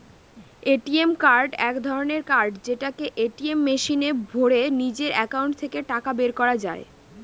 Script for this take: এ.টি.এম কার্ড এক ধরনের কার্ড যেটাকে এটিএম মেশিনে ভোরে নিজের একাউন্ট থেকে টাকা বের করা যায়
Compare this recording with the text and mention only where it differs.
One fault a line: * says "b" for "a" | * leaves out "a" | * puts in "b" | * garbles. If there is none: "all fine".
all fine